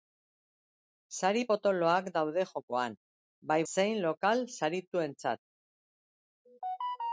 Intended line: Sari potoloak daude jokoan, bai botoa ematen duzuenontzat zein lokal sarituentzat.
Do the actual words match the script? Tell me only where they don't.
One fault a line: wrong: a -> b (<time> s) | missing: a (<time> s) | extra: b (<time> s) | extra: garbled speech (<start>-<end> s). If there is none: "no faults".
missing: botoa ematen duzuenontzat (3.6 s)